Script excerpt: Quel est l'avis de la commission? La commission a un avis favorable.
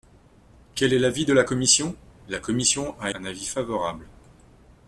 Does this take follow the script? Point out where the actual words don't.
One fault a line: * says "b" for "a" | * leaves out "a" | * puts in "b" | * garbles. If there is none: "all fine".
all fine